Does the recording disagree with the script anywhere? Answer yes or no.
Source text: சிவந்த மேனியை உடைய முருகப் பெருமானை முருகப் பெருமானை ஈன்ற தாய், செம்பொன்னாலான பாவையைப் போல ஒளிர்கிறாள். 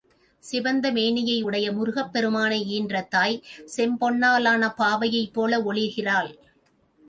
yes